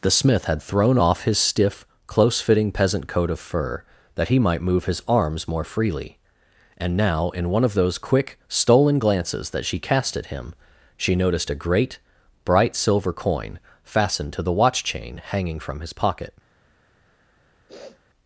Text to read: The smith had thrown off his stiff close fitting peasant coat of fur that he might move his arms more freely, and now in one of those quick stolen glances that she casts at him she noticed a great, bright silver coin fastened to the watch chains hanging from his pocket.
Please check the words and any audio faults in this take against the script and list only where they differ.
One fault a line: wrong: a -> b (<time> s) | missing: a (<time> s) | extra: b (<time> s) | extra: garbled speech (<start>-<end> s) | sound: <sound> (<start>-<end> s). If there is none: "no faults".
wrong: casts -> cast (9.8 s)
wrong: chains -> chain (14.8 s)
sound: sniff (17.7-18.0 s)